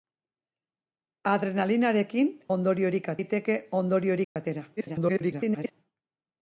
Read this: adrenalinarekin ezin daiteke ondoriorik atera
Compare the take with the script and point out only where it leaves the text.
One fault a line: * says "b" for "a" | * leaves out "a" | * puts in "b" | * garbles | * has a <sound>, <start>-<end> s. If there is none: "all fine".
* says "ondoriorik" for "ezin"
* has a dropout, 4.2-4.4 s
* garbles